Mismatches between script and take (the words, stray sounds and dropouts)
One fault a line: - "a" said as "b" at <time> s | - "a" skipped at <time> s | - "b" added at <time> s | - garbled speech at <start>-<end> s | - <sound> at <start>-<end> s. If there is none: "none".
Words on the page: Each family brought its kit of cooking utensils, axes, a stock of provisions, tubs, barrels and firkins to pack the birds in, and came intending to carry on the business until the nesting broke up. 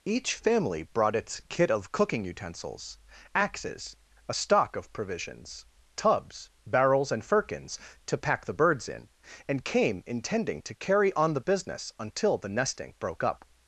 none